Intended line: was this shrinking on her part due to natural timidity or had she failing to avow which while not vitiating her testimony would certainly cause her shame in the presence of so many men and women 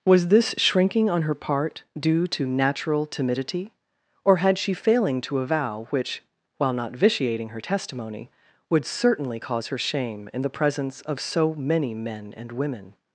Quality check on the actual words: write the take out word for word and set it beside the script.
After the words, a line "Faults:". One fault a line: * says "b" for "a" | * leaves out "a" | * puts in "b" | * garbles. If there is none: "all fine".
was this shrinking on her part due to natural timidity or had she failing to avow which while not vitiating her testimony would certainly cause her shame in the presence of so many men and women
Faults:
all fine